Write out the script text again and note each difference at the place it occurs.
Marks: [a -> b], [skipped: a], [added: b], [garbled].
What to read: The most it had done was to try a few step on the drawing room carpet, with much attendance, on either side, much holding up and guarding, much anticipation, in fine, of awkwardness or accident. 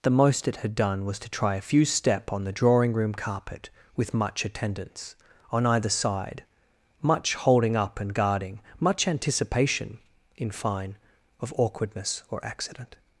The most it had done was to try a few step on the drawing room carpet, with much attendance, on either side, much holding up and guarding, much anticipation, in fine, of awkwardness or accident.